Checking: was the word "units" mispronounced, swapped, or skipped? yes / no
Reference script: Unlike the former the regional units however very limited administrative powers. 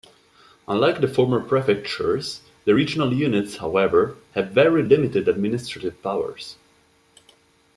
no